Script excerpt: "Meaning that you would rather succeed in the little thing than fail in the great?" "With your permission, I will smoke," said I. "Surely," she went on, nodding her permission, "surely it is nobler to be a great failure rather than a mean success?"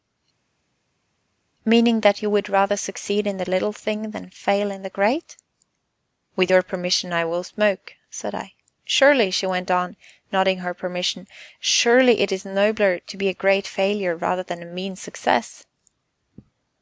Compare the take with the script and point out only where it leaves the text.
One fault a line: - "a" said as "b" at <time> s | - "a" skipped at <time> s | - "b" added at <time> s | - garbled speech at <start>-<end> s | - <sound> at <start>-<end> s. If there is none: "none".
none